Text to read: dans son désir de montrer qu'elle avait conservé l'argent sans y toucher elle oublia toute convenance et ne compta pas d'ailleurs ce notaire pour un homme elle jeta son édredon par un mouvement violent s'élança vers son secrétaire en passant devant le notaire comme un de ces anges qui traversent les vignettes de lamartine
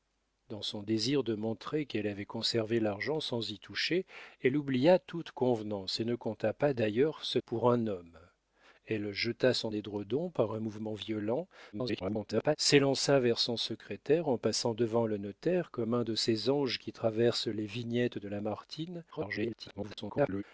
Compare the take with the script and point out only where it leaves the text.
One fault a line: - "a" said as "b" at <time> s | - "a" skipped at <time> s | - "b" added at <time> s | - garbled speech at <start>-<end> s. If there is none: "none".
- "notaire" skipped at 7.4 s
- garbled speech at 11.7-12.6 s
- garbled speech at 19.1-20.4 s